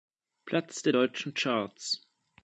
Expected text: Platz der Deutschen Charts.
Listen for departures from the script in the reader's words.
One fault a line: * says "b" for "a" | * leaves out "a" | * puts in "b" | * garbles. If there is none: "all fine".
all fine